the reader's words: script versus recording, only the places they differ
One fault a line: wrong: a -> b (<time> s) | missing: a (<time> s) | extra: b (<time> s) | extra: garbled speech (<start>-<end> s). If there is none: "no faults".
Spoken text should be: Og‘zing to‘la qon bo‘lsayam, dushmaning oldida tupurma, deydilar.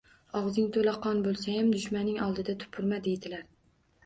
no faults